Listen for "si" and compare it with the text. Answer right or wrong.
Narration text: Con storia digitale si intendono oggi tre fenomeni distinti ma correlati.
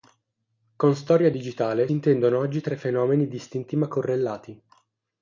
wrong